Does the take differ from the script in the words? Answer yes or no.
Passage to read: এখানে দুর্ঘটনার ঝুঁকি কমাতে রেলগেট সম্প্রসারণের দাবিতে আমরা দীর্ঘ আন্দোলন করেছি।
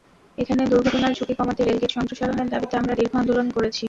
no